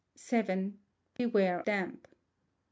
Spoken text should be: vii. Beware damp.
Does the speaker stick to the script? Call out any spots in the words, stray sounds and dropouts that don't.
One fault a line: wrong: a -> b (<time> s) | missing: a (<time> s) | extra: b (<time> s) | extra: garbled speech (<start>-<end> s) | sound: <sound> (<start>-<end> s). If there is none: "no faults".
sound: dropout (1.2-1.2 s)